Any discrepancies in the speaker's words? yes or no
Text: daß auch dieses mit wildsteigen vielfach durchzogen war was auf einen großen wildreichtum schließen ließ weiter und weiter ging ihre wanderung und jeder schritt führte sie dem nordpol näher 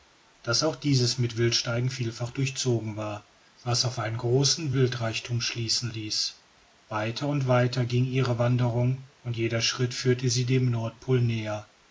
no